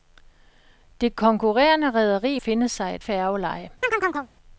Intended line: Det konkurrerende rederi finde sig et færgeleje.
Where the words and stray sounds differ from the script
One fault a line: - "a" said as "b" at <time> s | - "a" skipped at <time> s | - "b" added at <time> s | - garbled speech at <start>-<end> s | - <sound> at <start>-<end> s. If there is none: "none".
- chirp at 3.8-4.3 s